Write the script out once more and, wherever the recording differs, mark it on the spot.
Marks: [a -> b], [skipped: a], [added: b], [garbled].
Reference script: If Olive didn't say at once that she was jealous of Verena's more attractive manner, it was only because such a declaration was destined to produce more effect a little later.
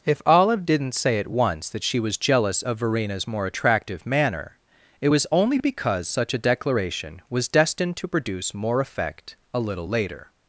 If Olive didn't say at once that she was jealous of Verena's more attractive manner, it was only because such a declaration was destined to produce more effect a little later.